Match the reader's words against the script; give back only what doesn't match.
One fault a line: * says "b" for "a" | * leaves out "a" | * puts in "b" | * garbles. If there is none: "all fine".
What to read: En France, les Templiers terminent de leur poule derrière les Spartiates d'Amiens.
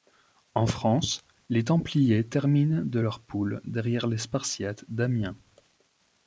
all fine